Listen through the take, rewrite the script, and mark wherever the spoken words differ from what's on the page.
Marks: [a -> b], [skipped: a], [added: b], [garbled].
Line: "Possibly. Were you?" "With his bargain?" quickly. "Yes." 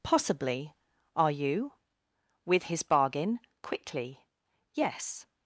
"Possibly. [Were -> Are] you?" "With his bargain?" quickly. "Yes."